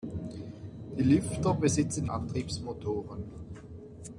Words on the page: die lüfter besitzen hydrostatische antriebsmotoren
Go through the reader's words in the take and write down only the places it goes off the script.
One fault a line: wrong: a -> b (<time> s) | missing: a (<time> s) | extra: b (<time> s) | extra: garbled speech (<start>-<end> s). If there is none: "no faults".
missing: hydrostatische (2.1 s)